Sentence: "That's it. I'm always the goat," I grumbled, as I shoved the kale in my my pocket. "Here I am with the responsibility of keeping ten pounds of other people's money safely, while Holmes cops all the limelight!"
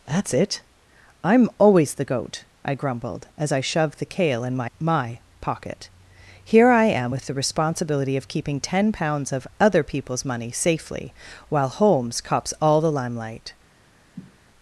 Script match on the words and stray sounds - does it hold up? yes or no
no